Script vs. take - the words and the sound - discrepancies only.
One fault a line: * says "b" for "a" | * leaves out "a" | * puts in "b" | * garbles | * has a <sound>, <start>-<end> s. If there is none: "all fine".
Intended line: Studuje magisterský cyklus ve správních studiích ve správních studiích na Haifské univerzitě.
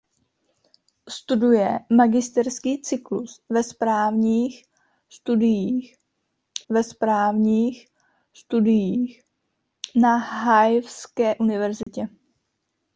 * has a dropout, 11.8-11.9 s